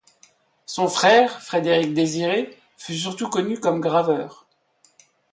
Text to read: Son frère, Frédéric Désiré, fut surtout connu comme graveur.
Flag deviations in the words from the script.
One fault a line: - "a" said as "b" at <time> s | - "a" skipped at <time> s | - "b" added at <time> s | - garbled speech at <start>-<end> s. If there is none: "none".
none